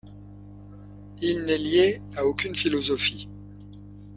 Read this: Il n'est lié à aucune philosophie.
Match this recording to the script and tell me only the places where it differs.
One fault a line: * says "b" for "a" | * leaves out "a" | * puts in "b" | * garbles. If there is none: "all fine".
all fine